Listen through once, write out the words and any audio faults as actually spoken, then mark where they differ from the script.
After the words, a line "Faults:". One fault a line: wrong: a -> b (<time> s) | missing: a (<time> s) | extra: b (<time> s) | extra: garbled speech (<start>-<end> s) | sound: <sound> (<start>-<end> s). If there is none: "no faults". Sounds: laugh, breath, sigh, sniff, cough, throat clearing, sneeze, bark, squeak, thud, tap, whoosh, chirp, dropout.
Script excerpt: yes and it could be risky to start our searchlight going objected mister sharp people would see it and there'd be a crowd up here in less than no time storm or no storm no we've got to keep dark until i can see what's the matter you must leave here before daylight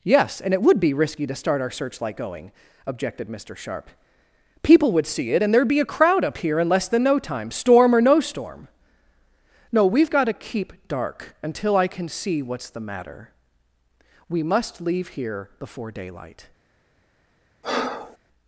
yes and it would be risky to start our searchlight going objected mister sharp people would see it and there'd be a crowd up here in less than no time storm or no storm no we've got to keep dark until i can see what's the matter we must leave here before daylight
Faults:
wrong: could -> would (0.6 s)
wrong: you -> we (14.3 s)
sound: breath (17.6-18.2 s)